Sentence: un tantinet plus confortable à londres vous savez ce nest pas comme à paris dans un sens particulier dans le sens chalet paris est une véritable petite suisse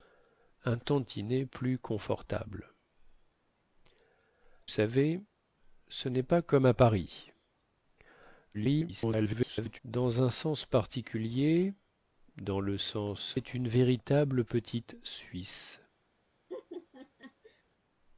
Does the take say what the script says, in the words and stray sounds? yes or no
no